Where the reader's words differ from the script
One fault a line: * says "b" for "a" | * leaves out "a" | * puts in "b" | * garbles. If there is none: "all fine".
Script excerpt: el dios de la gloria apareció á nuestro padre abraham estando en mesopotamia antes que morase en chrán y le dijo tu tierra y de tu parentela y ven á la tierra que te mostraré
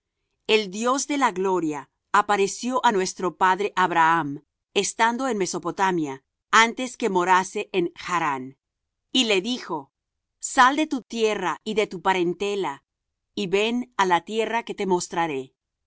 * puts in "sal de"